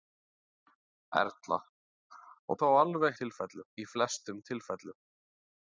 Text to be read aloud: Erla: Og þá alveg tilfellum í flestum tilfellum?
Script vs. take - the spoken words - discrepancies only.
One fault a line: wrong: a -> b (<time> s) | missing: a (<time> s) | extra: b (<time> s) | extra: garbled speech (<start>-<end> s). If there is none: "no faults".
no faults